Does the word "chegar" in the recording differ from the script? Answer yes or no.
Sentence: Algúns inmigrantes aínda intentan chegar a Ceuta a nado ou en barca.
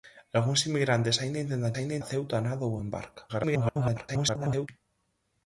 yes